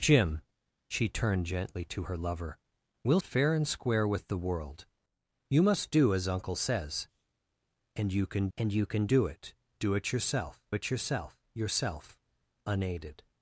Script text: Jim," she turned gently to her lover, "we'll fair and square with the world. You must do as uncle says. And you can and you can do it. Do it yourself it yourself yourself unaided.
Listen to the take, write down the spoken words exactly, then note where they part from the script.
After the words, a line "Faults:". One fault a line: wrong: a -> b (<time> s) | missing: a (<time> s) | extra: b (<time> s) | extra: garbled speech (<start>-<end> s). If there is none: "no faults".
Jim," she turned gently to her lover, "we'll fair and square with the world. You must do as uncle says. And you can and you can do it. Do it yourself it yourself yourself unaided.
Faults:
no faults